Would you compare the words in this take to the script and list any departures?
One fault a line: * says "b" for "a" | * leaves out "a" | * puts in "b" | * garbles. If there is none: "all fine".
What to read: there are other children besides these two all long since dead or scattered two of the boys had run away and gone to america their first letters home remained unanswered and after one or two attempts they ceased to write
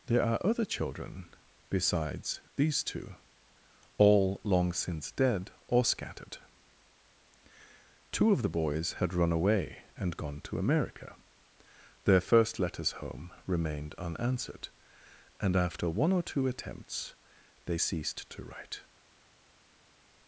all fine